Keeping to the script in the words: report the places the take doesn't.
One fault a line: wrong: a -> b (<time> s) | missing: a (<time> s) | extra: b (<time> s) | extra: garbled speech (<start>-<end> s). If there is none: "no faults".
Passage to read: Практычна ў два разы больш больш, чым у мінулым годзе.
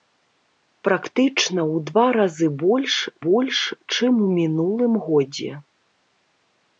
no faults